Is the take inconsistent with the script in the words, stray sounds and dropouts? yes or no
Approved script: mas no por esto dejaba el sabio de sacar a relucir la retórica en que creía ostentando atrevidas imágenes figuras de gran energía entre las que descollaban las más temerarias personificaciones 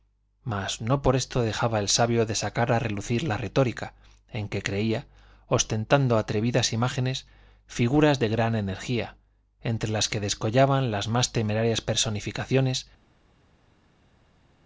no